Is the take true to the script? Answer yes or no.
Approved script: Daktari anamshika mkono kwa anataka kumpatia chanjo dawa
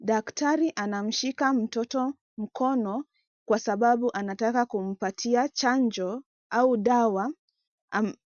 no